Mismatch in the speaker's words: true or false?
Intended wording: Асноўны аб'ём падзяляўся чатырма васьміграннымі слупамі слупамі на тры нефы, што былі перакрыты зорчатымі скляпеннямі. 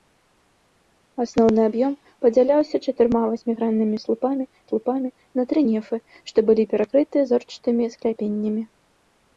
false